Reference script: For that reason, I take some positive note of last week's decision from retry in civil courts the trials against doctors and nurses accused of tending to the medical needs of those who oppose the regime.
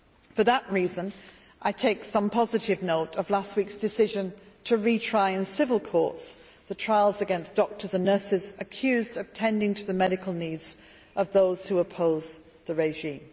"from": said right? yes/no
no